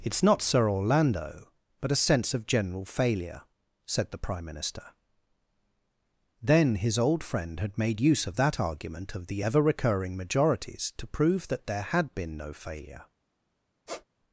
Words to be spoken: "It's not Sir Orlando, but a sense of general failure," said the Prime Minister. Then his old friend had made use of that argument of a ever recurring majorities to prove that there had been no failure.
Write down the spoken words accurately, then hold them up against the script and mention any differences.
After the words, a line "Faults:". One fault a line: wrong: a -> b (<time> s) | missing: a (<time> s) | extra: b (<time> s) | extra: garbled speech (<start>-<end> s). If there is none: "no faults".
"It's not Sir Orlando, but a sense of general failure," said the Prime Minister. Then his old friend had made use of that argument of the ever recurring majorities to prove that there had been no failure.
Faults:
wrong: a -> the (9.2 s)